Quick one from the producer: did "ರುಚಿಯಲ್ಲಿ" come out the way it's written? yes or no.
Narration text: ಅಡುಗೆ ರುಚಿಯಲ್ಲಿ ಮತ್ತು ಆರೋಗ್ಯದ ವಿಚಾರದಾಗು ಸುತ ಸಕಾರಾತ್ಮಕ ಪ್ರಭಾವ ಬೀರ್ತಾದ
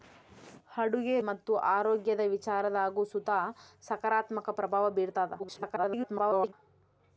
no